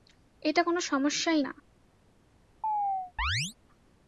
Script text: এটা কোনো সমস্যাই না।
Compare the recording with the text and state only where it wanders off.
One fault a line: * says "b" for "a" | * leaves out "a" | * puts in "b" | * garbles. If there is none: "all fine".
all fine